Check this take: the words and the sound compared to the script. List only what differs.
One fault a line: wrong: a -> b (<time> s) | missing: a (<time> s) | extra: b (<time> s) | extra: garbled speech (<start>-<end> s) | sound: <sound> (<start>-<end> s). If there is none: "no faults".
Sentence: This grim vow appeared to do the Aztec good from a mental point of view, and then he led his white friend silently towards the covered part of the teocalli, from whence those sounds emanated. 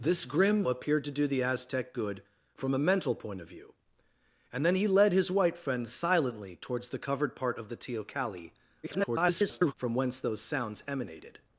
missing: vow (0.6 s)
extra: garbled speech (8.8-9.7 s)